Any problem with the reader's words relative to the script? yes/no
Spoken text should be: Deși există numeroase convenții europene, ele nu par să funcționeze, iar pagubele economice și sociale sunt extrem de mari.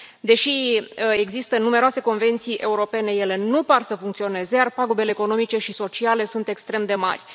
no